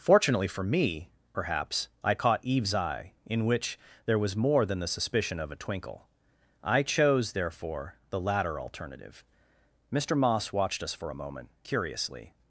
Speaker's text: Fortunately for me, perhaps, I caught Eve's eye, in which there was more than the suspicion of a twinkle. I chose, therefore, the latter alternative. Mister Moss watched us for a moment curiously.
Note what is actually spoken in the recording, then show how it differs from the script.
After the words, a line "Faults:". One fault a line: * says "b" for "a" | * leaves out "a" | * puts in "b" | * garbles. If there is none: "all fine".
Fortunately for me, perhaps, I caught Eve's eye, in which there was more than the suspicion of a twinkle. I chose, therefore, the latter alternative. Mister Moss watched us for a moment curiously.
Faults:
all fine